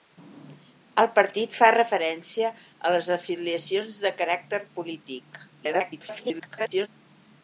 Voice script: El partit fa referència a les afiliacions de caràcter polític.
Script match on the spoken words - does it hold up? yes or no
no